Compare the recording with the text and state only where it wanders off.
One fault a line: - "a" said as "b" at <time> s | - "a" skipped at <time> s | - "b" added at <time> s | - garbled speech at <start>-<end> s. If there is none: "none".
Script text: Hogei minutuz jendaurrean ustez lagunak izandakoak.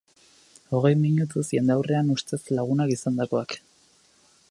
none